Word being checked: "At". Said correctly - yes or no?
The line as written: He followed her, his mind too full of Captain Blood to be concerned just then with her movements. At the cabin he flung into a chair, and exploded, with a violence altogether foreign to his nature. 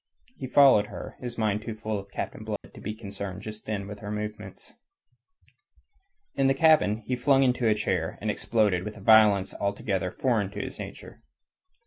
no